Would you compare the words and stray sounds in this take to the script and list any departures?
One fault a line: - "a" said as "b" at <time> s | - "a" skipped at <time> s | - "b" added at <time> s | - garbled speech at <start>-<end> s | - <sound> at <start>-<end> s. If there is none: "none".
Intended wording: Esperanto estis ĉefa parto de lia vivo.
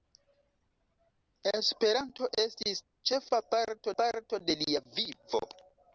- "parto" added at 4.0 s